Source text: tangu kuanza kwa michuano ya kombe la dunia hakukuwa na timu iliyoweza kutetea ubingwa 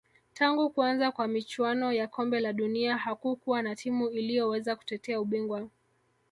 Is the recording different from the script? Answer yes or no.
no